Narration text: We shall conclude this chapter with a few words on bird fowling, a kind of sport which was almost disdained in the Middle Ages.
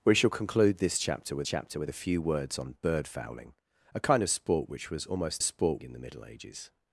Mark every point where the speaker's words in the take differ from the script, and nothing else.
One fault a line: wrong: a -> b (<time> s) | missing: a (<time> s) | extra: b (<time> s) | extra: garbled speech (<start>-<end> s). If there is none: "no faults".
extra: chapter with (1.4 s)
wrong: disdained -> sport (5.4 s)